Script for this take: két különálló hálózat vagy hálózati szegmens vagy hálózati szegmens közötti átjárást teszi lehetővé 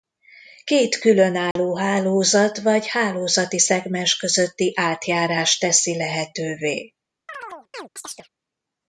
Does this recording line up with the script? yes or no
no